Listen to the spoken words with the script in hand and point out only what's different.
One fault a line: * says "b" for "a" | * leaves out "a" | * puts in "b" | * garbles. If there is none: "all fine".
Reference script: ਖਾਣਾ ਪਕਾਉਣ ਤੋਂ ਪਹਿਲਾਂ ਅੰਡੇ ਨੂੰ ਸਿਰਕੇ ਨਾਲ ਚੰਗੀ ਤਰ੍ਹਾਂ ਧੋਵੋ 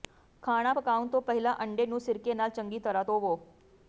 all fine